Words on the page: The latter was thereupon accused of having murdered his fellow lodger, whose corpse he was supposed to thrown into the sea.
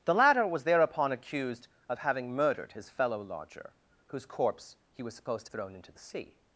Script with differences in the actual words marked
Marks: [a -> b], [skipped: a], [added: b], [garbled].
The latter was thereupon accused of having murdered his fellow lodger, whose corpse he was supposed to thrown into the sea.